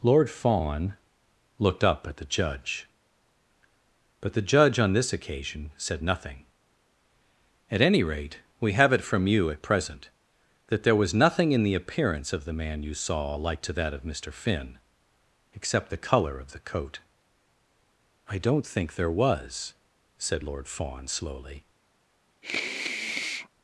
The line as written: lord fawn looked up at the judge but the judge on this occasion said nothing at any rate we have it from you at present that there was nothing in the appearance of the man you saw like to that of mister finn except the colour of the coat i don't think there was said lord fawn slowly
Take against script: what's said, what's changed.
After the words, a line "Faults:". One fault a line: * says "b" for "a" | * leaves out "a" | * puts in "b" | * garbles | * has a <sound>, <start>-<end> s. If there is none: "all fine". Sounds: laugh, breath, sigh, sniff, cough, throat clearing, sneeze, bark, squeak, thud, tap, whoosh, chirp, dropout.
lord fawn looked up at the judge but the judge on this occasion said nothing at any rate we have it from you at present that there was nothing in the appearance of the man you saw like to that of mister finn except the colour of the coat i don't think there was said lord fawn slowly
Faults:
* has a sniff, 22.4-23.5 s